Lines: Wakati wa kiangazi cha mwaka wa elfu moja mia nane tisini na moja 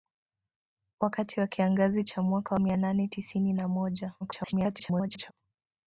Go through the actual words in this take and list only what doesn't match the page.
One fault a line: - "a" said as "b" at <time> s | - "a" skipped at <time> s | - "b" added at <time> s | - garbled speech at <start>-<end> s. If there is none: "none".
- "wa elfu moja" skipped at 2.5 s
- garbled speech at 4.2-5.3 s